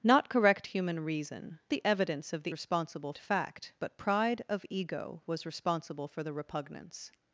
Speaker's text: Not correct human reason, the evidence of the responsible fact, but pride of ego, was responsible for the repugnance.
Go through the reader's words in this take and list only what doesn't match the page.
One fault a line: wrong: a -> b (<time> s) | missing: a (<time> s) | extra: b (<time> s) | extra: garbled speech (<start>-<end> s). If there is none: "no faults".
no faults